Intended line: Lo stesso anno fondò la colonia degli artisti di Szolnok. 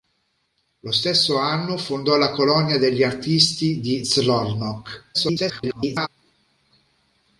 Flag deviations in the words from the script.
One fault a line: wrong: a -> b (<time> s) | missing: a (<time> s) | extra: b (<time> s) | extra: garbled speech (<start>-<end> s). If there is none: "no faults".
extra: garbled speech (5.1-6.1 s)